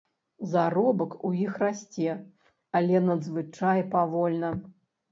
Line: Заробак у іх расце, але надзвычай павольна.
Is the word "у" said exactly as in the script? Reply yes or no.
yes